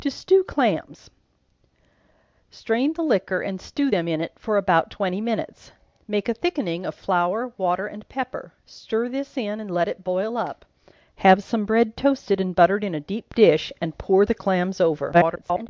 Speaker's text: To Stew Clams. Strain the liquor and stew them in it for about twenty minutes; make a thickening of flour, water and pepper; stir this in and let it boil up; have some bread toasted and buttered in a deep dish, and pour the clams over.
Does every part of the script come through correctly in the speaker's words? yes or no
no